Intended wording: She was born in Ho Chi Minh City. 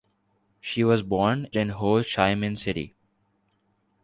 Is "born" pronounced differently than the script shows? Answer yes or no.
no